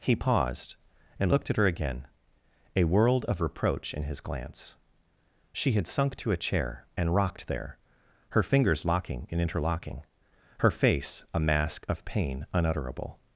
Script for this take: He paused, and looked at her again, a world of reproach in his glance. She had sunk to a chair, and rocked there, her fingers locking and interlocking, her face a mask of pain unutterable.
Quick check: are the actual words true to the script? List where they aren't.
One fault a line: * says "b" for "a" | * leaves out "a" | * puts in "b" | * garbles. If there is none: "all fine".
all fine